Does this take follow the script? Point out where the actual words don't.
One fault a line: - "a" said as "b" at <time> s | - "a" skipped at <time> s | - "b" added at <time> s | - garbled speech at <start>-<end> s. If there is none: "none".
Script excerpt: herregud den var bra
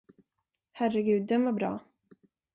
none